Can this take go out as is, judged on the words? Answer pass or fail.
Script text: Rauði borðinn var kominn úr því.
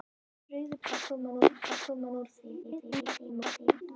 fail